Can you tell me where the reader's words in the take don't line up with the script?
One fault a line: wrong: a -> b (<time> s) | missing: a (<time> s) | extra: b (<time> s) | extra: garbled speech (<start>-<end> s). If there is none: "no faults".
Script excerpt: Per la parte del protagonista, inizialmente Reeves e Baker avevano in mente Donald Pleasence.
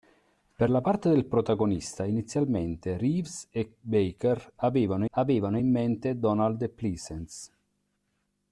extra: avevano (5.1 s)